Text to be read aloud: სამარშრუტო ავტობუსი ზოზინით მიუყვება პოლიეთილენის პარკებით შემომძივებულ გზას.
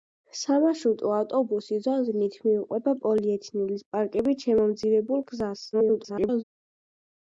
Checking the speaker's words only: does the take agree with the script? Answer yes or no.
no